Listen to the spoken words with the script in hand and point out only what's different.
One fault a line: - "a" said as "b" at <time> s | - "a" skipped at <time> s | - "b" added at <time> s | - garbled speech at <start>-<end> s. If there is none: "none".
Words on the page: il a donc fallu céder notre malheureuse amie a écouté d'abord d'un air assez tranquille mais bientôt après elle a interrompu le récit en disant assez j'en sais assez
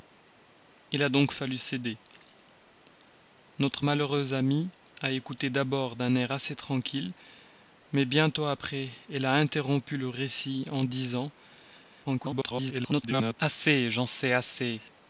- garbled speech at 12.0-13.3 s